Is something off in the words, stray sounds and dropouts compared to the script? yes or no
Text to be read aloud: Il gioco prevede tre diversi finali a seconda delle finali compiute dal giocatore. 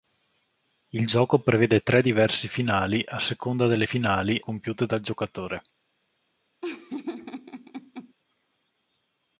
yes